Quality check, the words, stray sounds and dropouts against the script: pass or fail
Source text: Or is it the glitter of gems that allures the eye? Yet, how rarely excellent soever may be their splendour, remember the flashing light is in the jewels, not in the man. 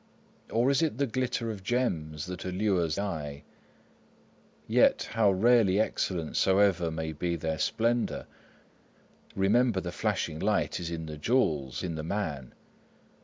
fail